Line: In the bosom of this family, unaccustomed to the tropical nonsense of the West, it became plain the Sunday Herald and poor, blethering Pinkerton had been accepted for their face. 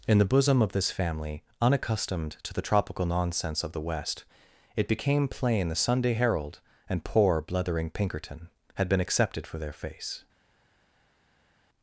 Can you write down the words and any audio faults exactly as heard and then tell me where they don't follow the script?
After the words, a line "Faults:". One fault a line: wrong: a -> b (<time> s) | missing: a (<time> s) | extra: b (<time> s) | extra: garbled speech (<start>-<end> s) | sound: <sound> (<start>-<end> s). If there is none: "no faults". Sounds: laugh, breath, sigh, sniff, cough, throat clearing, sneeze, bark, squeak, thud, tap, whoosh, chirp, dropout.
In the bosom of this family, unaccustomed to the tropical nonsense of the West, it became plain the Sunday Herald and poor, blethering Pinkerton had been accepted for their face.
Faults:
no faults